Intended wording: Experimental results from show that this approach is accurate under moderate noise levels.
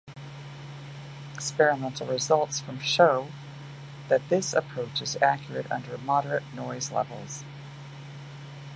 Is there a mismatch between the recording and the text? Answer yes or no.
no